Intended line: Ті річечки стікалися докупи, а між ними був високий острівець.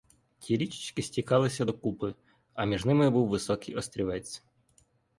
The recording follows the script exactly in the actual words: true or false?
true